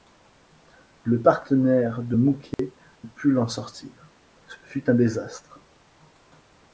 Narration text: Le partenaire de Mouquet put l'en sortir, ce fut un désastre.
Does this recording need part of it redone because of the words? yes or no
no